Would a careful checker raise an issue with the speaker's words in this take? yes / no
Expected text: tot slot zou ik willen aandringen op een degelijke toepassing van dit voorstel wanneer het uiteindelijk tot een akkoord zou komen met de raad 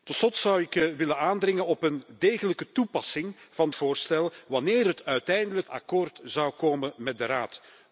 yes